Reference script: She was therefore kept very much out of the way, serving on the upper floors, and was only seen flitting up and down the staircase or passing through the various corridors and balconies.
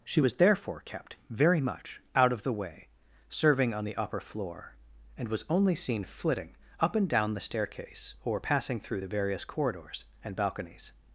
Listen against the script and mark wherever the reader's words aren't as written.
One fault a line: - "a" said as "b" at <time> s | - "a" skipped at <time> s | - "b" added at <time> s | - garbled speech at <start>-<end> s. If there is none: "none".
- "floors" said as "floor" at 4.2 s